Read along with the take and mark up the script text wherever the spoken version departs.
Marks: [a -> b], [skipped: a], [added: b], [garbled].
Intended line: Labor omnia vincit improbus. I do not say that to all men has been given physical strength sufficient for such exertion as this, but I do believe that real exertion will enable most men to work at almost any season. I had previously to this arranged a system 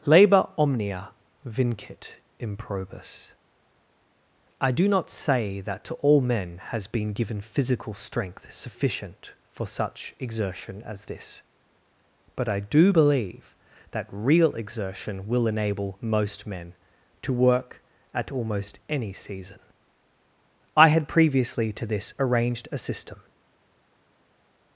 Labor omnia vincit improbus. I do not say that to all men has been given physical strength sufficient for such exertion as this, but I do believe that real exertion will enable most men to work at almost any season. I had previously to this arranged a system